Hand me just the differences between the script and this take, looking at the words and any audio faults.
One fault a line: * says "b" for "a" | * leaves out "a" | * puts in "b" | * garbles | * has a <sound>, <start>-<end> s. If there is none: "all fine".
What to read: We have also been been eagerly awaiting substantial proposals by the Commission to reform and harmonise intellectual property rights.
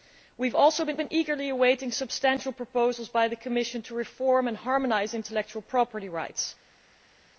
all fine